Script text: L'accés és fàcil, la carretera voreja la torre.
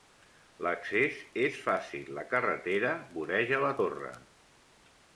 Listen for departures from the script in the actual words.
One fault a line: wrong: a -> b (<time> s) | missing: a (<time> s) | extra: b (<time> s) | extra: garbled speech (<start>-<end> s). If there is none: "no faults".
no faults